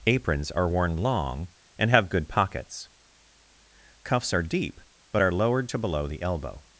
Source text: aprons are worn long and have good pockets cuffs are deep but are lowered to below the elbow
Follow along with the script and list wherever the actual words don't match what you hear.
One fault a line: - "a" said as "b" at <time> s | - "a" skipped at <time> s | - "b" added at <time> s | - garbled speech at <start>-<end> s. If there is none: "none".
none